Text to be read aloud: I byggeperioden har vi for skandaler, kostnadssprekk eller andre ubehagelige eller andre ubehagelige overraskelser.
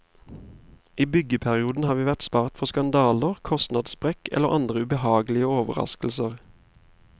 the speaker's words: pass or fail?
fail